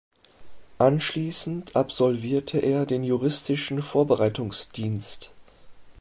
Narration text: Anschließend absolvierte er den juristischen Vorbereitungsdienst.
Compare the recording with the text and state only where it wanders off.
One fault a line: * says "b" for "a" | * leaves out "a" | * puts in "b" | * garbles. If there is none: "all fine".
all fine